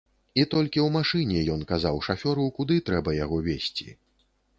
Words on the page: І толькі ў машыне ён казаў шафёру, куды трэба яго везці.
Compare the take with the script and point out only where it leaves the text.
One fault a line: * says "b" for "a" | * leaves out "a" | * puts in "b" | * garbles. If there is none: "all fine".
all fine